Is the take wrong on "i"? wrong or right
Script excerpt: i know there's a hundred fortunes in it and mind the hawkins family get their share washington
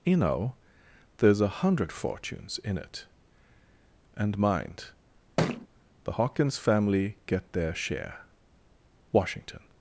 wrong